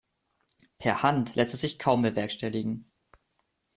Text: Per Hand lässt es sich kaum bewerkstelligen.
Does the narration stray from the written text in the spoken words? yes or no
no